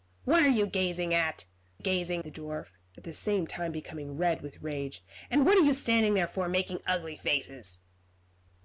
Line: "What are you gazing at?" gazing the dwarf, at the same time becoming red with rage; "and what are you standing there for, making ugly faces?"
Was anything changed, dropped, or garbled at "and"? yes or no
no